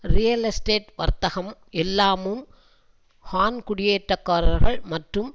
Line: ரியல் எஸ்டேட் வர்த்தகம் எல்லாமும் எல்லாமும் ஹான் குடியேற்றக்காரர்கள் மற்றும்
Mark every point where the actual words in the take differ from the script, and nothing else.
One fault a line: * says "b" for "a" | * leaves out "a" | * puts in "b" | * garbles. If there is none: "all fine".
* leaves out "எல்லாமும்"